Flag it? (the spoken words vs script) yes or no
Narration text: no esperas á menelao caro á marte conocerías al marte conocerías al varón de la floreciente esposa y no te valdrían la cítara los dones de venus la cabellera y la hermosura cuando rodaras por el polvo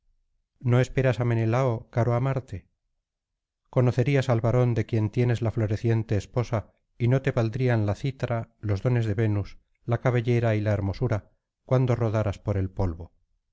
yes